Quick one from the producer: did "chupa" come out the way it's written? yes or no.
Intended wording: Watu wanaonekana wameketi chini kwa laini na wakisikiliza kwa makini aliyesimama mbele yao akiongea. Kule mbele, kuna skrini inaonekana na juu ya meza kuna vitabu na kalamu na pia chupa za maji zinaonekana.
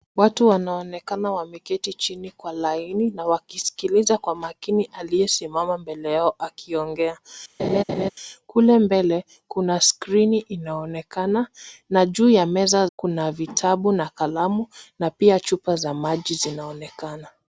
yes